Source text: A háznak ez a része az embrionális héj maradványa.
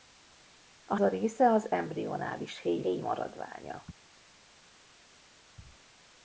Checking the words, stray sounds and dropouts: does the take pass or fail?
fail